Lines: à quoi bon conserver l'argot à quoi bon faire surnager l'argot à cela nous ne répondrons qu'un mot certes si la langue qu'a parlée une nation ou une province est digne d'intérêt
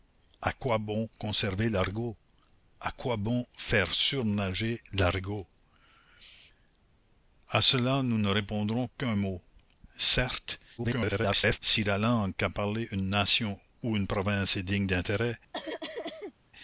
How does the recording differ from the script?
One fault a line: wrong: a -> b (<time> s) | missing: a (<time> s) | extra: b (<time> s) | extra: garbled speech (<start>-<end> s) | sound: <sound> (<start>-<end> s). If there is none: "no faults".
extra: garbled speech (10.8-11.6 s)
sound: cough (15.5-16.3 s)